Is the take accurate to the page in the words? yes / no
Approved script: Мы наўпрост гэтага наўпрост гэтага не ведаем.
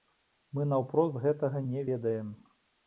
no